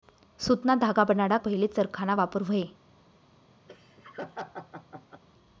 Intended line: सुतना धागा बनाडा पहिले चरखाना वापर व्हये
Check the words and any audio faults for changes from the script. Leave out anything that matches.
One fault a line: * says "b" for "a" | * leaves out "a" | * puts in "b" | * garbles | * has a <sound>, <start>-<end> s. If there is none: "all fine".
* has a laugh, 3.7-5.2 s